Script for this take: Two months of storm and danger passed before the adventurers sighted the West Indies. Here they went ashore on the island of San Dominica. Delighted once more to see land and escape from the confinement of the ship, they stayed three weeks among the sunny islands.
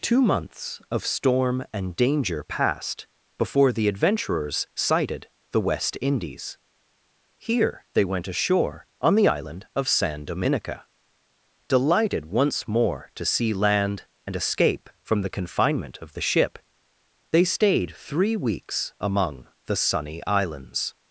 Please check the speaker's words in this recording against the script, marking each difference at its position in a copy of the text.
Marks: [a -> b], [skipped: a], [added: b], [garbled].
Two months of storm and danger passed before the adventurers sighted the West Indies. Here they went ashore on the island of San Dominica. Delighted once more to see land and escape from the confinement of the ship, they stayed three weeks among the sunny islands.